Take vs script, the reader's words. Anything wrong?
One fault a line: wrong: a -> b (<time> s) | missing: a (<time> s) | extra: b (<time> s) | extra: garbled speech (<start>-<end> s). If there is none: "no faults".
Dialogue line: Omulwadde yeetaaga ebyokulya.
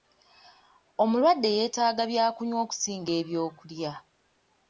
extra: byakunywa okusinga (2.1 s)